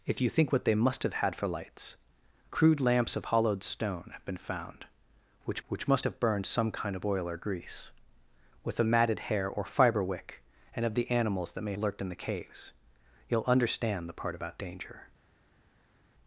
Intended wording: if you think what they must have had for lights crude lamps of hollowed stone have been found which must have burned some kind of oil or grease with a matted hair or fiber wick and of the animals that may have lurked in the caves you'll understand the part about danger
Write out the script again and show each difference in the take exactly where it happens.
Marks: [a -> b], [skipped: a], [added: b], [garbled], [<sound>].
if you think what they must have had for lights crude lamps of hollowed stone have been found which [added: which] must have burned some kind of oil or grease with a matted hair or fiber wick and of the animals that may [skipped: have] lurked in the caves you'll understand the part about danger